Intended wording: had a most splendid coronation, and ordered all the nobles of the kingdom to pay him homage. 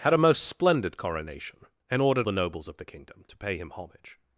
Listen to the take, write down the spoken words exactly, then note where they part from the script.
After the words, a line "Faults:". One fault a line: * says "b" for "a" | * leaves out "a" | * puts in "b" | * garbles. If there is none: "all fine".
had a most splendid coronation, and ordered the nobles of the kingdom to pay him homage.
Faults:
* leaves out "all"